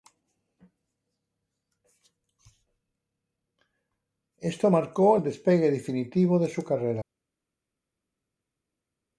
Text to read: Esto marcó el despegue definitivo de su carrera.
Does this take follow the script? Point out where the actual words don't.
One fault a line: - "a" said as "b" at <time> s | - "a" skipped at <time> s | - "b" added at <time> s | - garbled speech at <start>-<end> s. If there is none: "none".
none